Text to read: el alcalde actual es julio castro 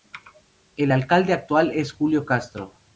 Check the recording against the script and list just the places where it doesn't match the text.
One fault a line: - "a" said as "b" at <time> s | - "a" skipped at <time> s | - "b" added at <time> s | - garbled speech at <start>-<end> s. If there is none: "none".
none